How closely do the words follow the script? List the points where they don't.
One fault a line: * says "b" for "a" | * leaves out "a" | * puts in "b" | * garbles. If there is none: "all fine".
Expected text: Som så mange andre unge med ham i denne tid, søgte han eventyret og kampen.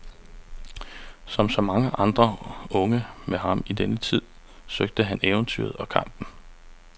all fine